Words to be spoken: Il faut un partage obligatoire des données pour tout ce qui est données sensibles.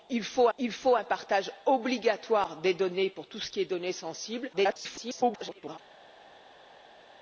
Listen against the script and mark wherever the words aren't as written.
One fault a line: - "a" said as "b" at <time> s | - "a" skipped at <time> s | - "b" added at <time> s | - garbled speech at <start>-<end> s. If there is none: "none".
- "il faut" added at 0.6 s
- garbled speech at 4.5-5.8 s